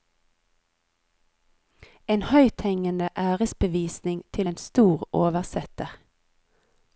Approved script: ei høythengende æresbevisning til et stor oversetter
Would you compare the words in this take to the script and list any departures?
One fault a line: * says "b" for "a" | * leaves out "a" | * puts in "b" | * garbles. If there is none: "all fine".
* says "en" for "ei"
* says "en" for "et"